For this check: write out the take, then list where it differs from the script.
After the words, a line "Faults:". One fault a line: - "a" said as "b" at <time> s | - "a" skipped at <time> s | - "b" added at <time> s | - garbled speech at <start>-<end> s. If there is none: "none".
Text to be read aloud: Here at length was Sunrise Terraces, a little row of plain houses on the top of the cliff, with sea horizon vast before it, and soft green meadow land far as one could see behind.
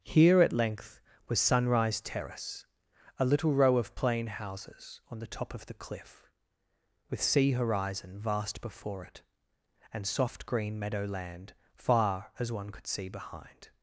Here at length was Sunrise Terrace, a little row of plain houses on the top of the cliff, with sea horizon vast before it, and soft green meadow land far as one could see behind.
Faults:
- "Terraces" said as "Terrace" at 2.0 s